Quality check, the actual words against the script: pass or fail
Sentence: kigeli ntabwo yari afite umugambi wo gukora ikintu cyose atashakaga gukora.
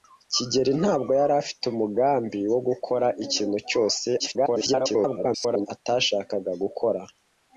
fail